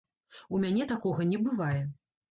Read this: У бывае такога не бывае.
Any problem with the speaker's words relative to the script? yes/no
yes